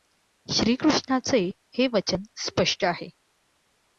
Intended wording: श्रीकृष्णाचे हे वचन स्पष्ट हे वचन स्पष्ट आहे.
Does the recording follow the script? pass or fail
fail